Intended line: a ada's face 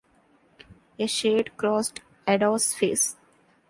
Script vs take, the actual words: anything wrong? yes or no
yes